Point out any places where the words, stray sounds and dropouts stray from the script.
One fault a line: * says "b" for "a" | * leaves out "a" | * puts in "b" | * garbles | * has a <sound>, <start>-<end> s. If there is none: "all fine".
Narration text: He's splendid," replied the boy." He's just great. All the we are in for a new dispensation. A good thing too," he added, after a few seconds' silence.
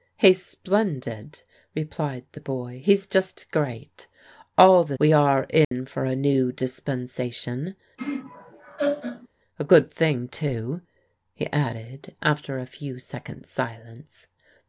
* has a dropout, 5.6-5.7 s
* has a laugh, 8.0-9.3 s